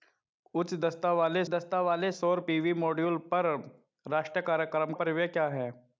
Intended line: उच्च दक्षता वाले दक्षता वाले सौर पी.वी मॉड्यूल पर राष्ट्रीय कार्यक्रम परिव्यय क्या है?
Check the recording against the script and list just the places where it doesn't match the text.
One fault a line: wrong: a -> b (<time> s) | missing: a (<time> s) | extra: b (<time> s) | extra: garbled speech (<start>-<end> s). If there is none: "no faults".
no faults